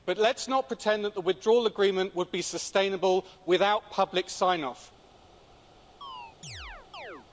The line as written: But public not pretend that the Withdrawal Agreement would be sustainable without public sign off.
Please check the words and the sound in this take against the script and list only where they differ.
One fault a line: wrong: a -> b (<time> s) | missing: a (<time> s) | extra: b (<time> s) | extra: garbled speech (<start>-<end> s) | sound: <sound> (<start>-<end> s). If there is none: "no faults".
wrong: public -> let's (0.2 s)
sound: chirp (6.0-7.3 s)